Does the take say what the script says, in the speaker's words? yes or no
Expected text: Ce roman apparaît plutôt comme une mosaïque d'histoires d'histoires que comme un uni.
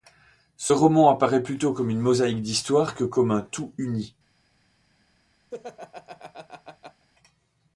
no